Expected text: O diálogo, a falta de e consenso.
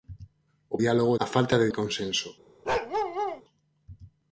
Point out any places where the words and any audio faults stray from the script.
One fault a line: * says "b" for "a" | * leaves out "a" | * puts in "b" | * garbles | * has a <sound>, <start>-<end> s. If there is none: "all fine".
* has a bark, 2.6-3.4 s